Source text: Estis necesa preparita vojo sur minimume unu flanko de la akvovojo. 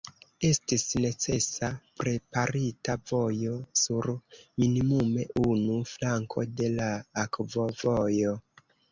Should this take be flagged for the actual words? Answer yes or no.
no